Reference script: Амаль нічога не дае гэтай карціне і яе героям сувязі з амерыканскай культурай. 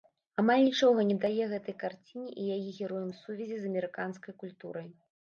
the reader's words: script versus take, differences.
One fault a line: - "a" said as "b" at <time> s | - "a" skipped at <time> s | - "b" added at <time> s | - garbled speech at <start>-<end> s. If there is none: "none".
none